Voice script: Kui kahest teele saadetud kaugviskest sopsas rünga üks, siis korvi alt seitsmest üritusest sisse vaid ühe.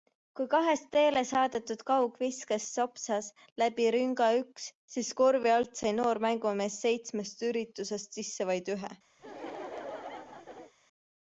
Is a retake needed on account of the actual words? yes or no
yes